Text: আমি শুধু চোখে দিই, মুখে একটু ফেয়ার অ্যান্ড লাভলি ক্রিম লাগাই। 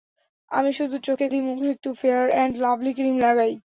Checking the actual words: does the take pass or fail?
pass